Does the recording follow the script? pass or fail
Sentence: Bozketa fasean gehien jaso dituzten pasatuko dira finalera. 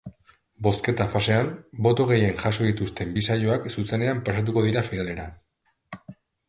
fail